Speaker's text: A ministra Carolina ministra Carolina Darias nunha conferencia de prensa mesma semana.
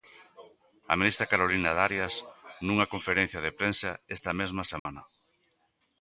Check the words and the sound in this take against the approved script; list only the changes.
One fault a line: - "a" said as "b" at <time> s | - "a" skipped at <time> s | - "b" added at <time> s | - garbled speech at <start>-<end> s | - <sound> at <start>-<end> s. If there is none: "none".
- "ministra Carolina" skipped at 1.7 s
- "esta" added at 4.2 s
- dropout at 4.8-4.9 s